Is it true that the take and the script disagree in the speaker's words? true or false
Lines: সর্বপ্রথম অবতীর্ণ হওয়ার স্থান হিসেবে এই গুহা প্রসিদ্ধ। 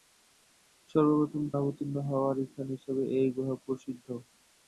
false